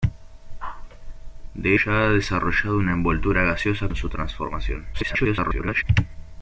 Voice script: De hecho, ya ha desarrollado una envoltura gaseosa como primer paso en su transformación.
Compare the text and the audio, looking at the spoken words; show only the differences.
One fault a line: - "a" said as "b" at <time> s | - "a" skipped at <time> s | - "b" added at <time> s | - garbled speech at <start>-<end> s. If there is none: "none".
- "hecho" skipped at 1.8 s
- "como primer paso" skipped at 3.9 s
- garbled speech at 4.9-5.8 s